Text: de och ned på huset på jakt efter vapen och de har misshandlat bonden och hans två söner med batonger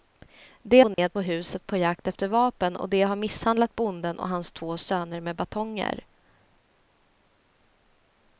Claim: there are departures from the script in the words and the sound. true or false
true